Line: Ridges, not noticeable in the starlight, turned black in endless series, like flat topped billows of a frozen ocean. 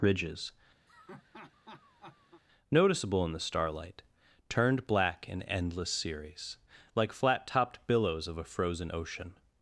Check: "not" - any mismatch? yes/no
yes